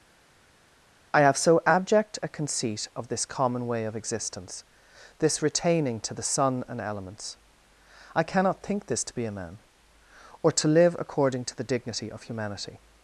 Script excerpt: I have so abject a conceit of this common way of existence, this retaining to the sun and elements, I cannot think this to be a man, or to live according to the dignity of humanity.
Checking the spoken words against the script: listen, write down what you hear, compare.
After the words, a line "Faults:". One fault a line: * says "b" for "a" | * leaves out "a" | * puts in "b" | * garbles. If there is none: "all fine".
I have so abject a conceit of this common way of existence, this retaining to the sun and elements, I cannot think this to be a man, or to live according to the dignity of humanity.
Faults:
all fine